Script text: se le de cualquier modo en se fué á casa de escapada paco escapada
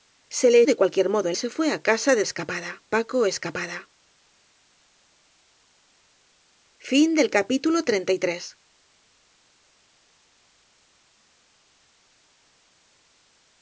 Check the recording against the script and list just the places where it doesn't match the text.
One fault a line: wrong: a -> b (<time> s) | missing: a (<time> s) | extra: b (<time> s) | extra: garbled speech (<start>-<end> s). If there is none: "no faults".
no faults